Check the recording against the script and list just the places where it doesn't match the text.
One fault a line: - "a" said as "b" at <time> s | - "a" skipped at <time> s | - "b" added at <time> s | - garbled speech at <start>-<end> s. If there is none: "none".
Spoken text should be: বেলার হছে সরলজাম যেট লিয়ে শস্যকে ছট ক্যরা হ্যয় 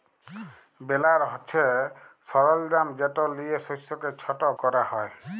none